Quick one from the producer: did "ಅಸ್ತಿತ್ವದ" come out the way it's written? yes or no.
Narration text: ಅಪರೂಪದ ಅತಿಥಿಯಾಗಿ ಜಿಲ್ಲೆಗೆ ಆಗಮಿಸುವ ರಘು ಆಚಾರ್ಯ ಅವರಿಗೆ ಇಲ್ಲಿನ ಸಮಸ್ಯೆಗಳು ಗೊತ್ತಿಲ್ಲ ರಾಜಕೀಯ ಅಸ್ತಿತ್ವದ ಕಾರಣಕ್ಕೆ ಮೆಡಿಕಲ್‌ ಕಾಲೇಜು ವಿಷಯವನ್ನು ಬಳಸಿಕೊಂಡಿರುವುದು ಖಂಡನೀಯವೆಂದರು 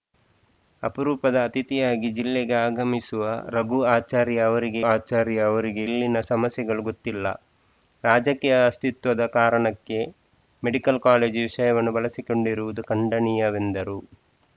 yes